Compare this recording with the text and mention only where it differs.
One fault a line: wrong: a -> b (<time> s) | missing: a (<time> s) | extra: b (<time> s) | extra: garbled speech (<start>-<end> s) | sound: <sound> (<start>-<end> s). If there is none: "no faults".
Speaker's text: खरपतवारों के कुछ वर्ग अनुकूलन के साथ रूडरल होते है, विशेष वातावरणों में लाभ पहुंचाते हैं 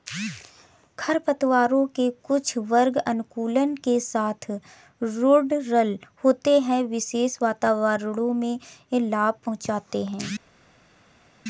no faults